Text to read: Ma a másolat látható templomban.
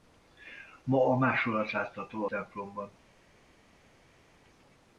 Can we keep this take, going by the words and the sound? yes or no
yes